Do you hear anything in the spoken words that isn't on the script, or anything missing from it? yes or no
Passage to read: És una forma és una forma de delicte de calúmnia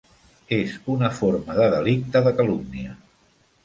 yes